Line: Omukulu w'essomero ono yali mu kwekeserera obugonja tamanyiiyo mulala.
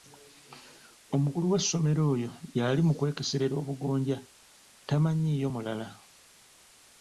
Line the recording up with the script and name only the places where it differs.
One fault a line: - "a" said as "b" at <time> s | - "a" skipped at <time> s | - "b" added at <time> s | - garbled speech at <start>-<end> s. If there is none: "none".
- "ono" said as "oyo" at 2.1 s